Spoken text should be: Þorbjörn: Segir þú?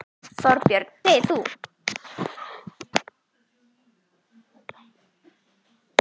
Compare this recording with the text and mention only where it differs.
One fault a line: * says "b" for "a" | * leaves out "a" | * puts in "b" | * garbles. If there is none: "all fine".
all fine